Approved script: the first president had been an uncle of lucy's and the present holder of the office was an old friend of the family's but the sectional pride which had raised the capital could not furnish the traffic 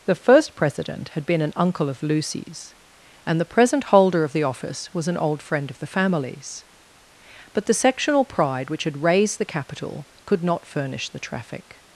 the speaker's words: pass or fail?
pass